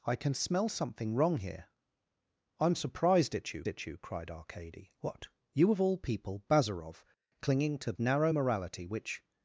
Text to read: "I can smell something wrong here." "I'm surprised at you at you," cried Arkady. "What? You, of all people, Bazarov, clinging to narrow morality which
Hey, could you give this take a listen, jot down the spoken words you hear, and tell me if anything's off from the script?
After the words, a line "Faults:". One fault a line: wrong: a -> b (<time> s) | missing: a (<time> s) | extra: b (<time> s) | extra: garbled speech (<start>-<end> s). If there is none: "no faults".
"I can smell something wrong here." "I'm surprised at you at you," cried Arkady. "What? You, of all people, Bazarov, clinging to narrow morality which
Faults:
no faults